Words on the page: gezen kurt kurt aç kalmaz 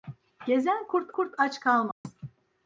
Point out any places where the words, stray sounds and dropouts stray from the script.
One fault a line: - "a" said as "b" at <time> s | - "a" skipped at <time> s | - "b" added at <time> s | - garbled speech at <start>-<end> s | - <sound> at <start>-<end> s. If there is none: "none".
- dropout at 1.9-2.0 s